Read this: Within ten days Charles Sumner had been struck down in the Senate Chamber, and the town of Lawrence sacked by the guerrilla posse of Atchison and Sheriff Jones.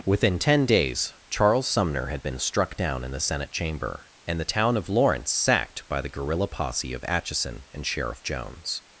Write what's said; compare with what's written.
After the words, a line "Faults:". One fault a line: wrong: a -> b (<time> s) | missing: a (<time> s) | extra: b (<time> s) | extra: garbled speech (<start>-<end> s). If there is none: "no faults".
Within ten days Charles Sumner had been struck down in the Senate Chamber, and the town of Lawrence sacked by the guerrilla posse of Atchison and Sheriff Jones.
Faults:
no faults